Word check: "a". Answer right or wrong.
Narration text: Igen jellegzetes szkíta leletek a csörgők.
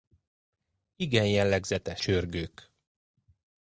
wrong